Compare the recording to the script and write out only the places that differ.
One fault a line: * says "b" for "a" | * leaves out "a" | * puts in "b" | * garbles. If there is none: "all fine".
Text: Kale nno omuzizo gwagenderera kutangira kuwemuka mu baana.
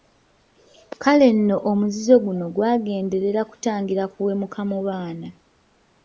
* puts in "guno"